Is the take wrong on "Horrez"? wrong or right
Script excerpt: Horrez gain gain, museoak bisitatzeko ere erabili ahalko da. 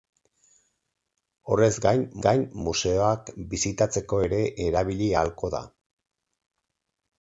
right